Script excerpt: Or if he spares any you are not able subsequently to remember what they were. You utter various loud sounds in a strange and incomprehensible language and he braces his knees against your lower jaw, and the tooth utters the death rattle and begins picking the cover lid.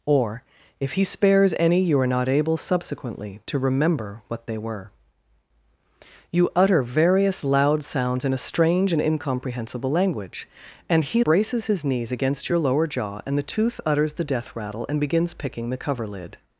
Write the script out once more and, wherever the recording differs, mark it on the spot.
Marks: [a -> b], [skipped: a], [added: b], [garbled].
Or if he spares any you are not able subsequently to remember what they were. You utter various loud sounds in a strange and incomprehensible language and he braces his knees against your lower jaw, and the tooth utters the death rattle and begins picking the cover lid.